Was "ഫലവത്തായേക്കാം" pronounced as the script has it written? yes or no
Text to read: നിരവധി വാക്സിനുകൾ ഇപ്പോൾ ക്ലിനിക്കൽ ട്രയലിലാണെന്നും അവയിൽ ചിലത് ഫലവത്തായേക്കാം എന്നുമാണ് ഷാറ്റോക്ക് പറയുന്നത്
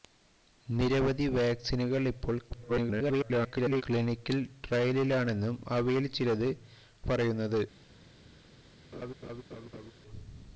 no